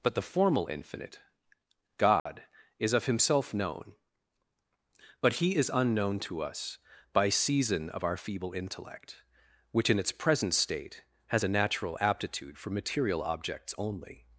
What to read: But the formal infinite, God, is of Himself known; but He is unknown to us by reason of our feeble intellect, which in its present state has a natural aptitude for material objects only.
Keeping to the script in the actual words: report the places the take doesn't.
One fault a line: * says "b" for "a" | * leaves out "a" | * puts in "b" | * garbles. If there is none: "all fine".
* says "season" for "reason"